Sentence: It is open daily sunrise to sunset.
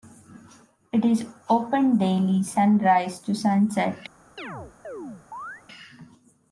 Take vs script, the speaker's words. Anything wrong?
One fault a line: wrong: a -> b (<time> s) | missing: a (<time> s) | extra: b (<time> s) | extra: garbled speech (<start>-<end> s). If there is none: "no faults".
no faults